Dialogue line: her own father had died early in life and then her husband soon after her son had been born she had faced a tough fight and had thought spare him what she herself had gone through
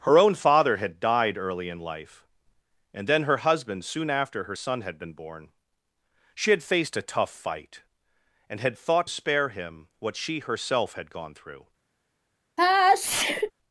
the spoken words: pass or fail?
pass